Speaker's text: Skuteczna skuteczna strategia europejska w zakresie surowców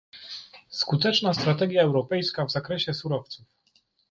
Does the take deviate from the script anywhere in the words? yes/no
yes